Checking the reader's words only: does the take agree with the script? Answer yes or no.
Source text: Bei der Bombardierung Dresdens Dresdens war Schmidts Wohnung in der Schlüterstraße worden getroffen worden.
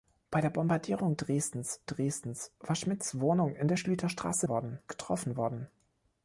yes